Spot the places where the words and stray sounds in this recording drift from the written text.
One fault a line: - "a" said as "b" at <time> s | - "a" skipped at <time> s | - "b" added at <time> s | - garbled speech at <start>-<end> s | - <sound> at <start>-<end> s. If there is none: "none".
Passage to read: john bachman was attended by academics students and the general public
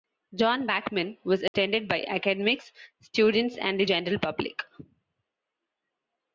- dropout at 1.5-1.5 s